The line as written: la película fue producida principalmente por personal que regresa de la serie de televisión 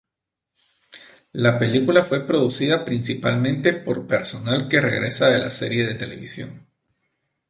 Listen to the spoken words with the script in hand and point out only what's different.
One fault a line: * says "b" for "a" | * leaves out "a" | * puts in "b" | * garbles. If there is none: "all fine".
all fine